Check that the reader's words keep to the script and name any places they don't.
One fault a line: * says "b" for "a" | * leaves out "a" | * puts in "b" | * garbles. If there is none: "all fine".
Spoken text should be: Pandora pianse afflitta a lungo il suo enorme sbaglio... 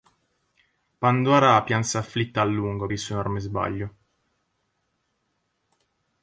all fine